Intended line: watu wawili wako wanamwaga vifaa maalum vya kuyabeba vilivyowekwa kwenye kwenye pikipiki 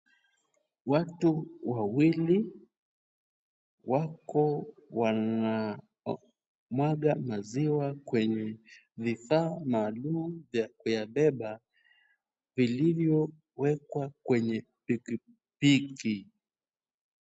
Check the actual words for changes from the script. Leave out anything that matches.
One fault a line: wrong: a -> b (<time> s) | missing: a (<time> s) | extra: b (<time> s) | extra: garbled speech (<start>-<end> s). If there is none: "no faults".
extra: maziwa kwenye (7.2 s)
missing: kwenye (14.7 s)